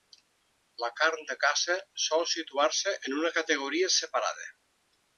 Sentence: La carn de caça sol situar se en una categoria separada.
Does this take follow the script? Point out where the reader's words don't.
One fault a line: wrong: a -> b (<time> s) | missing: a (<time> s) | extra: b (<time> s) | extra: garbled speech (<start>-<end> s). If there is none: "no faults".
no faults